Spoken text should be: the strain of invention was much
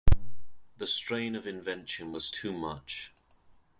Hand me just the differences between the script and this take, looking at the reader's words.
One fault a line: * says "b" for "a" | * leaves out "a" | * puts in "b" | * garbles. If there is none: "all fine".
* puts in "too"